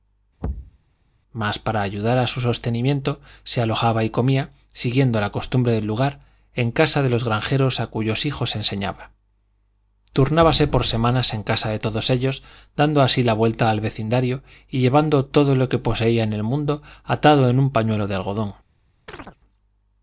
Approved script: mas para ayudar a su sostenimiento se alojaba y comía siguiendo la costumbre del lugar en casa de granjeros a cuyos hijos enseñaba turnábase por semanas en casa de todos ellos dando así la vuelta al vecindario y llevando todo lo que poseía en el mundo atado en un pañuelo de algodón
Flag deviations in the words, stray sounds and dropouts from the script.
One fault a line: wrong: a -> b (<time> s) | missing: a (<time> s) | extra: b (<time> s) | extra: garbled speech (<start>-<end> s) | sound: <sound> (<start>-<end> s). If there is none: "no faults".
sound: thud (0.4-0.8 s)
extra: los (7.1 s)
sound: chirp (19.1-19.4 s)